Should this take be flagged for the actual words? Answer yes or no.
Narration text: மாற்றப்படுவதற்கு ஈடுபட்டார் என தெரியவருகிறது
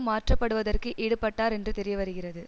yes